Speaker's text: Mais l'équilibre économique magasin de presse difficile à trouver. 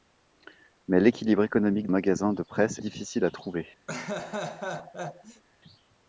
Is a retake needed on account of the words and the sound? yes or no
yes